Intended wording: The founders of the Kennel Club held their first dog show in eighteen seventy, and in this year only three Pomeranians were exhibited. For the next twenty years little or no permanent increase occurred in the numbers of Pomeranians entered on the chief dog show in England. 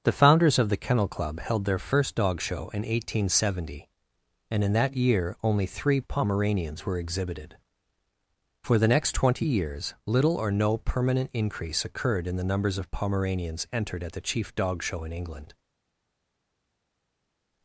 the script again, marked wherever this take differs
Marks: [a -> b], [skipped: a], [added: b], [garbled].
The founders of the Kennel Club held their first dog show in eighteen seventy, and in [this -> that] year only three Pomeranians were exhibited. For the next twenty years little or no permanent increase occurred in the numbers of Pomeranians entered [on -> at] the chief dog show in England.